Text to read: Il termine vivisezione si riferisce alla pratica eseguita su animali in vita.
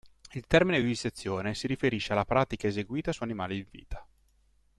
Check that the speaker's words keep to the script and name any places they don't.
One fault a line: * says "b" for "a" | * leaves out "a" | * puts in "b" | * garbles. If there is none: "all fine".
all fine